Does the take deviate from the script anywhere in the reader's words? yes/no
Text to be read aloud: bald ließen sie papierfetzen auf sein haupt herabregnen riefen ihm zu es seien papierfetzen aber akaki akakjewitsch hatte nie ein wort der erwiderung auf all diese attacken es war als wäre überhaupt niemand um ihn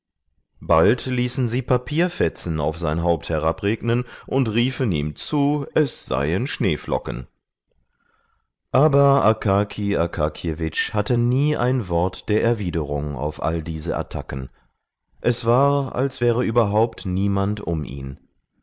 yes